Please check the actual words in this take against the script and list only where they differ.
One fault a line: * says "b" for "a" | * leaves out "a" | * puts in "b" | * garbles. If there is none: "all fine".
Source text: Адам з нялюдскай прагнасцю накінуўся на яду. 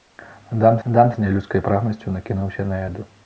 * puts in "адам"